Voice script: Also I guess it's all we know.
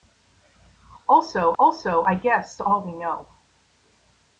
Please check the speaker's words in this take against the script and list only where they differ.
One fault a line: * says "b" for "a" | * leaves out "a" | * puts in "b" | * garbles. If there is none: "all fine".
* puts in "also"
* leaves out "it's"